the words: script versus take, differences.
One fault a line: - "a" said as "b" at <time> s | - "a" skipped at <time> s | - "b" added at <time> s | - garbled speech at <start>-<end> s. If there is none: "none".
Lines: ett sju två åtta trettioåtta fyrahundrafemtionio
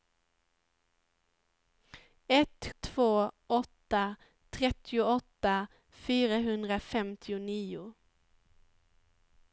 - "sju" skipped at 2.6 s